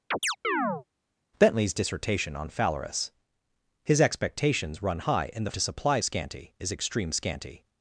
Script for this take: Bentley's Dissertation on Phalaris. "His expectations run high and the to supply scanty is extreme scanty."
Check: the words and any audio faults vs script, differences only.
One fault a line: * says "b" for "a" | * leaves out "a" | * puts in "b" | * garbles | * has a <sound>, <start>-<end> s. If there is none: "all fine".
* has a chirp, 0.1-0.8 s